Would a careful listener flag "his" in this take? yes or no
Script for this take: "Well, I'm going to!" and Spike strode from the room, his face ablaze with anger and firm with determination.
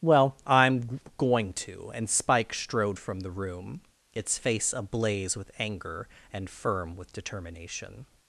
yes